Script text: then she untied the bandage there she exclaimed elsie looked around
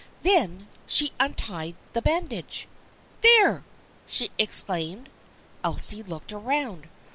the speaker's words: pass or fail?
pass